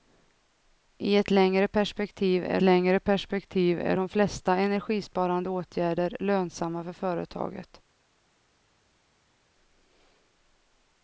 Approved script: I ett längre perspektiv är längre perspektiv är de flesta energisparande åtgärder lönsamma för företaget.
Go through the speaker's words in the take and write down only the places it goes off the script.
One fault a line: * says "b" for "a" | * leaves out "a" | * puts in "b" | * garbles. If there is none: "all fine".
all fine